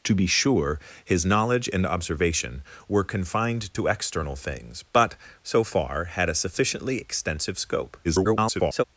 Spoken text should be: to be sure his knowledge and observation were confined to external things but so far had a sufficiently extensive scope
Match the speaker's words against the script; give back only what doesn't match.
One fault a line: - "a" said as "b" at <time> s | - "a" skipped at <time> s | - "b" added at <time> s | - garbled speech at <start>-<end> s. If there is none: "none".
- garbled speech at 8.0-8.8 s